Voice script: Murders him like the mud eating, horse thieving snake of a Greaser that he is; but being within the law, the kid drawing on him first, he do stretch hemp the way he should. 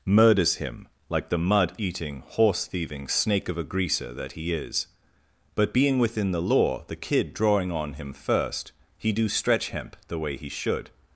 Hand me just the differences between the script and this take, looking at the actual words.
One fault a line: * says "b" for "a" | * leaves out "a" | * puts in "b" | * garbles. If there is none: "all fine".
all fine